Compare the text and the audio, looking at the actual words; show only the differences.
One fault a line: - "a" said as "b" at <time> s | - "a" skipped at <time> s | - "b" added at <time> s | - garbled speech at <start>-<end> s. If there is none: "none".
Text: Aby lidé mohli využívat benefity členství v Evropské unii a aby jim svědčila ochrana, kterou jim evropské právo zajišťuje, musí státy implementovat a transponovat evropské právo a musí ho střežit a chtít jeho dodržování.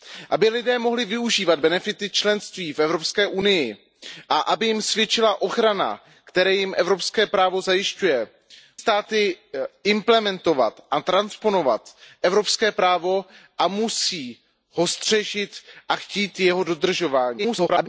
- "musí" skipped at 8.3 s
- garbled speech at 17.4-17.9 s